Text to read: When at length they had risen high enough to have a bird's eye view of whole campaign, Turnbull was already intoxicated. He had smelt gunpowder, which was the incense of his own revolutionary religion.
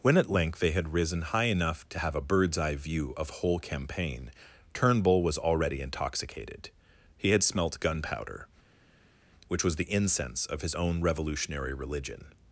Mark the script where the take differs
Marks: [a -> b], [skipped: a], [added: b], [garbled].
When at length they had risen high enough to have a bird's eye view of whole campaign, Turnbull was already intoxicated. He had smelt gunpowder, which was the incense of his own revolutionary religion.